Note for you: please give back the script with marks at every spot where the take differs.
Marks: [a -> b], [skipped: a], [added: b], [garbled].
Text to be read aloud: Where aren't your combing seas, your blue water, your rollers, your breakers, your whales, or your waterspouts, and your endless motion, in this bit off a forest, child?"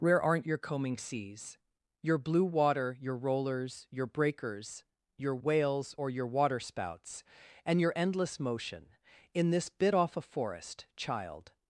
Where aren't your combing seas, your blue water, your rollers, your breakers, your whales, or your waterspouts, and your endless motion, in this bit off a forest, child?"